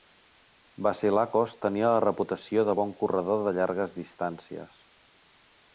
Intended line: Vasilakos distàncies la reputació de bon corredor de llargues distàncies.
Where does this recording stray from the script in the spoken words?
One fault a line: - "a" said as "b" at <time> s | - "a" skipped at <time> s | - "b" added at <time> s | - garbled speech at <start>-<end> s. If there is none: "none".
- "distàncies" said as "tenia" at 1.6 s